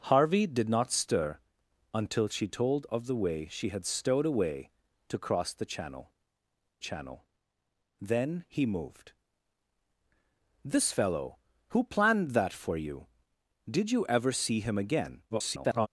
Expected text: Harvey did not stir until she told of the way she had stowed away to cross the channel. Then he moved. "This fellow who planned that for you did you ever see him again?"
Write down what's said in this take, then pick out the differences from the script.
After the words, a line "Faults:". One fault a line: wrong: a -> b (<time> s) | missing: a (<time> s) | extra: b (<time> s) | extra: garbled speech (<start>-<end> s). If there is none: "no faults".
Harvey did not stir until she told of the way she had stowed away to cross the channel channel. Then he moved. "This fellow who planned that for you did you ever see him again?" [garbled]
Faults:
extra: channel (6.8 s)
extra: garbled speech (15.3-15.9 s)